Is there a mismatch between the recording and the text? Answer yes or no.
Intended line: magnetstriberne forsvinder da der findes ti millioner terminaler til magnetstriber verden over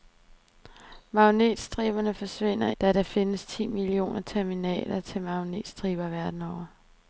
no